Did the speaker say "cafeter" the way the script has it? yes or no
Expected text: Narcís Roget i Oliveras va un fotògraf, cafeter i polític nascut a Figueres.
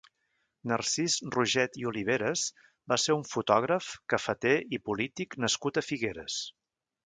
yes